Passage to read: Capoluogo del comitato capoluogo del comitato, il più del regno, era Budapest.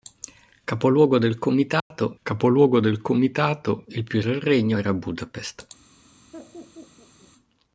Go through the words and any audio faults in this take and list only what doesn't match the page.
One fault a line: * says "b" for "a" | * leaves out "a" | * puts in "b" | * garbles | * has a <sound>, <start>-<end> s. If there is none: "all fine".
* has a dropout, 1.8-1.9 s
* has a laugh, 6.3-7.3 s